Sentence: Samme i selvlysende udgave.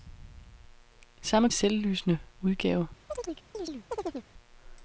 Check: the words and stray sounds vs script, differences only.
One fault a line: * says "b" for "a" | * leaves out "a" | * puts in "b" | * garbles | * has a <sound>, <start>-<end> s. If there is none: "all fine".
* has a chirp, 3.1-4.3 s